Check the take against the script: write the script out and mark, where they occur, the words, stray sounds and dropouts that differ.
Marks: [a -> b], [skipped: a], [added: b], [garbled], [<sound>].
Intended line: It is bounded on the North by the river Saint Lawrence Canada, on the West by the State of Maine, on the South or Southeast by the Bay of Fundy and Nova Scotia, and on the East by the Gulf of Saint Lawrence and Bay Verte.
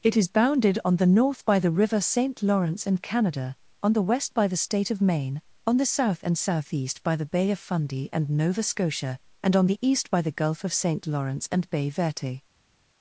It is bounded on the North by the river Saint Lawrence [added: and] Canada, on the West by the State of Maine, on the South [or -> and] Southeast by the Bay of Fundy and Nova Scotia, and on the East by the Gulf of Saint Lawrence and Bay Verte.